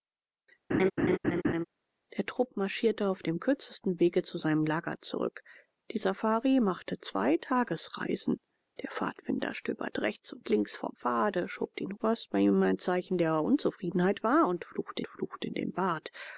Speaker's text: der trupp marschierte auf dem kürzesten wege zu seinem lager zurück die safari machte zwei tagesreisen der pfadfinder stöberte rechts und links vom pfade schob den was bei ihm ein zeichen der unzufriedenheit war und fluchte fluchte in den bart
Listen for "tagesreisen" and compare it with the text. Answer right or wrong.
right